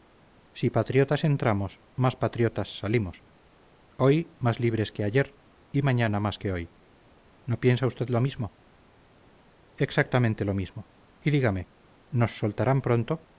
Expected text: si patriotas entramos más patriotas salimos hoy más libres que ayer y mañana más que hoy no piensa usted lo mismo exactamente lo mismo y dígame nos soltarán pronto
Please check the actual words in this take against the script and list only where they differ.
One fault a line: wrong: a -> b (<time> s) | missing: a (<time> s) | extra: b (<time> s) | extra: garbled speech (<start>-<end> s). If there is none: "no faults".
no faults